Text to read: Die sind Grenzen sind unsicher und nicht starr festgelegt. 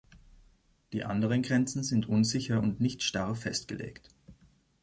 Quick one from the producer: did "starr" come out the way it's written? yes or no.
yes